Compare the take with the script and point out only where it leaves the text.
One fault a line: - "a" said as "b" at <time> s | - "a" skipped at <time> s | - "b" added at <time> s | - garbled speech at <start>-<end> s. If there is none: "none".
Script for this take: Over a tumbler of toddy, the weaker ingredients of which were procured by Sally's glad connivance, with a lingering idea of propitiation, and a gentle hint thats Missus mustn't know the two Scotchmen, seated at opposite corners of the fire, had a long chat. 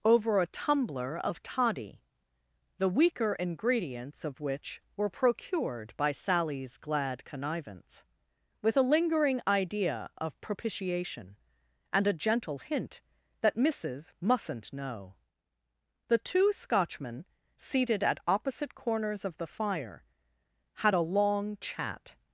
- "thats" said as "that" at 13.4 s